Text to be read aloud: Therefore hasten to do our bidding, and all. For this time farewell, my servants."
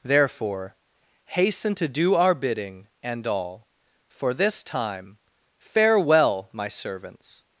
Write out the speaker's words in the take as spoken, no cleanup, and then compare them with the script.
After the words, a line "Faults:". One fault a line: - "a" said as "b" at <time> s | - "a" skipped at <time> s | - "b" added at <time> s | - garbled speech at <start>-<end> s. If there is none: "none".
Therefore hasten to do our bidding, and all. For this time farewell, my servants."
Faults:
none